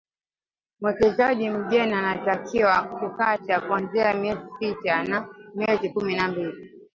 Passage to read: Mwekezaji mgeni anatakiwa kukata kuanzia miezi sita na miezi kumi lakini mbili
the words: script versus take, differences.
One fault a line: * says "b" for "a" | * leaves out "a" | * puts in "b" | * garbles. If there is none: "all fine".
* says "na" for "lakini"